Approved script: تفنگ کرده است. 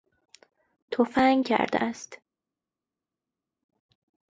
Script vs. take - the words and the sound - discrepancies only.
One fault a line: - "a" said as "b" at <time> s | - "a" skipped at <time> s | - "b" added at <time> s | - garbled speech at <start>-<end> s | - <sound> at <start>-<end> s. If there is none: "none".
none